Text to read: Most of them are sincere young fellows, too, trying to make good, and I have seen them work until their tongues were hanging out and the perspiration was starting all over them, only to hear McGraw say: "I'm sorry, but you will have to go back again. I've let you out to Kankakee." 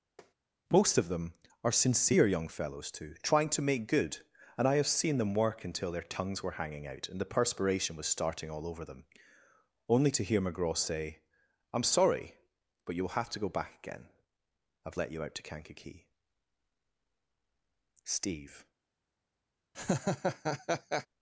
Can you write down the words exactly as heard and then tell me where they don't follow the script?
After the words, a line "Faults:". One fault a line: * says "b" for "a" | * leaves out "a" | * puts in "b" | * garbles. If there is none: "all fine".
Most of them are sincere young fellows, too, trying to make good, and I have seen them work until their tongues were hanging out and the perspiration was starting all over them, only to hear McGraw say: "I'm sorry, but you will have to go back again. I've let you out to Kankakee." "Steve
Faults:
* puts in "Steve"